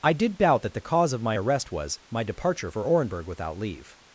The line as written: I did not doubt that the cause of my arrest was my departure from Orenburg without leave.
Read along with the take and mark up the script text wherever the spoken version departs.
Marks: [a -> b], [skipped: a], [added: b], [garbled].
I did [skipped: not] doubt that the cause of my arrest was my departure [from -> for] Orenburg without leave.